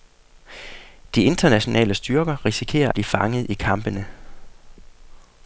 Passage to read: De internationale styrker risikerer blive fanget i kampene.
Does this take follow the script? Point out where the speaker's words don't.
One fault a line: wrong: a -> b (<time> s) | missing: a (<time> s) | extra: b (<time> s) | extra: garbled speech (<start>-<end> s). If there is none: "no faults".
no faults